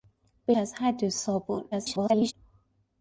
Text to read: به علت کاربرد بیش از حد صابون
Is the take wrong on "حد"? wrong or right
right